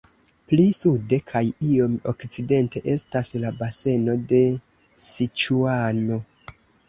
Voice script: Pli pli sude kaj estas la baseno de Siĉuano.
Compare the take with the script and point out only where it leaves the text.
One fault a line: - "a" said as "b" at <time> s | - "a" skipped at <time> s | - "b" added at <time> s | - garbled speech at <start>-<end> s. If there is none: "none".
- "pli" skipped at 0.6 s
- "iom okcidente" added at 1.7 s